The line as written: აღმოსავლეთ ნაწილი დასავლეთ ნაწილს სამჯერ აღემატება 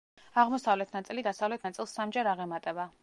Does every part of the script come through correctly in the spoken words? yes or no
yes